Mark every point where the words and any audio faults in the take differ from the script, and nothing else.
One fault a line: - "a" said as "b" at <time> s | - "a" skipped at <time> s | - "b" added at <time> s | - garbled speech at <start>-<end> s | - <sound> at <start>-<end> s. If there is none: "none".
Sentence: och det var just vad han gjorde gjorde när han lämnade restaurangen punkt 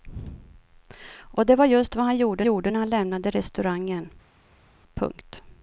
none